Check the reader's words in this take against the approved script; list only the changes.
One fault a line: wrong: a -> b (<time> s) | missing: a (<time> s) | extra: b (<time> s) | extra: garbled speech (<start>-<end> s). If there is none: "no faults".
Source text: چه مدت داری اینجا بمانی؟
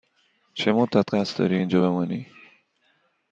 extra: قصد (1.1 s)